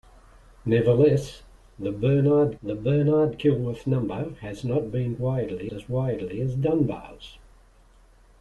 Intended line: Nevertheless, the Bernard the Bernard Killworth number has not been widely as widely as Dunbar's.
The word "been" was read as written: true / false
true